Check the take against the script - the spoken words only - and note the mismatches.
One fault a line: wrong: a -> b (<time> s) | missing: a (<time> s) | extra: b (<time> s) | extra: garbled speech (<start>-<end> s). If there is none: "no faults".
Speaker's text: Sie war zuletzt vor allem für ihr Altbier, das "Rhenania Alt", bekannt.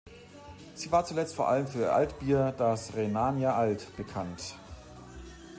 no faults